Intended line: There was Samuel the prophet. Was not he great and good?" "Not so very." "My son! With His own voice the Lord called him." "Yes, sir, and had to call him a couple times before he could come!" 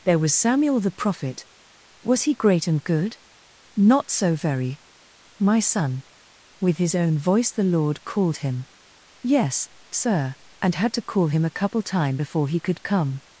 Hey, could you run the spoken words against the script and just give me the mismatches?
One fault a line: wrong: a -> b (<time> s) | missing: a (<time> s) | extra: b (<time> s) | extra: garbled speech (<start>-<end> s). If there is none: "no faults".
missing: not (2.2 s)
wrong: times -> time (11.8 s)